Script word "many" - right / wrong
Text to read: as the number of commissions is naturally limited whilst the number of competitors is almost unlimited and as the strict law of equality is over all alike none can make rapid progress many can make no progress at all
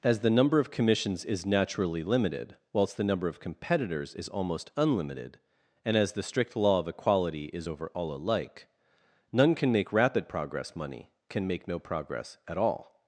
wrong